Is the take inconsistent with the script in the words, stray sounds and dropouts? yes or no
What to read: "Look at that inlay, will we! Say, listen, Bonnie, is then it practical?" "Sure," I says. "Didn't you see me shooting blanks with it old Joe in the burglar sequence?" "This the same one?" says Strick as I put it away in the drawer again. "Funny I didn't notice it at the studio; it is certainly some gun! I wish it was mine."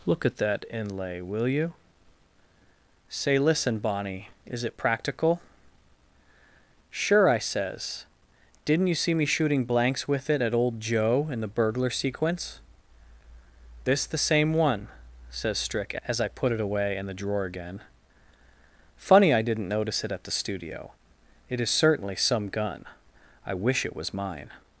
yes